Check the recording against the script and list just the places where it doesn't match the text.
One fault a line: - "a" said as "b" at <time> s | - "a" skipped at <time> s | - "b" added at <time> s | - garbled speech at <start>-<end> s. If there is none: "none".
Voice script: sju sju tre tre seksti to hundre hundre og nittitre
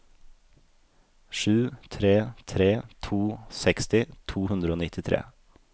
- "sju" said as "tre" at 1.9 s
- "tre" said as "to" at 3.1 s
- "hundre" skipped at 4.7 s